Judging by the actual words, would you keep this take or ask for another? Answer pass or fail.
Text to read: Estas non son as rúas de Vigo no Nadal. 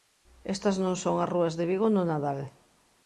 pass